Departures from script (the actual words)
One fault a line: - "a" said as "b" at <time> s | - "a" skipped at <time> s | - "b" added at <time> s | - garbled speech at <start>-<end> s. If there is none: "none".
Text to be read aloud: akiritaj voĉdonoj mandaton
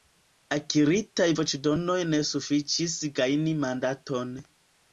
- "ne sufiĉis gajni" added at 2.1 s